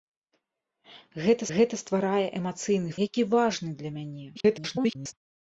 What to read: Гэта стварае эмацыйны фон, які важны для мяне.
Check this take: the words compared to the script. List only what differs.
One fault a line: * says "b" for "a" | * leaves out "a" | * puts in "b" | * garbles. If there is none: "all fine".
* puts in "гэта"
* leaves out "фон"
* garbles